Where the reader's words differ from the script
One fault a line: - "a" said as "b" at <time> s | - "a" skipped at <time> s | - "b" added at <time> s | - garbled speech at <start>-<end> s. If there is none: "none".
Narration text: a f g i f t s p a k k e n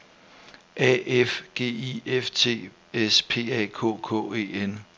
none